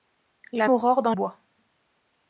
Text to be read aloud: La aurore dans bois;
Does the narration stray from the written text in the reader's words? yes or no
no